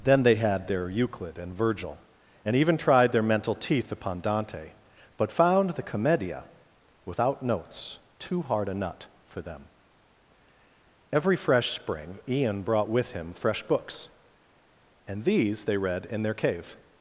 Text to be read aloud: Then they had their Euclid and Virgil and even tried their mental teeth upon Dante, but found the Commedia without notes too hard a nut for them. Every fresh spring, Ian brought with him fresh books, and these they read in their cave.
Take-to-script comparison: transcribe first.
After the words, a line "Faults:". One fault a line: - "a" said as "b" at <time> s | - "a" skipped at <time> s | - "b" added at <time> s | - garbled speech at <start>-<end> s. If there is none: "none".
Then they had their Euclid and Virgil and even tried their mental teeth upon Dante, but found the Commedia without notes too hard a nut for them. Every fresh spring, Ian brought with him fresh books, and these they read in their cave.
Faults:
none